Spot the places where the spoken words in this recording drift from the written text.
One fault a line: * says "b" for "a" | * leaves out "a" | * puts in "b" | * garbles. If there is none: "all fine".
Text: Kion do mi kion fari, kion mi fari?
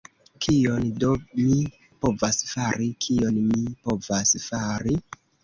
* says "povas" for "kion"
* puts in "povas"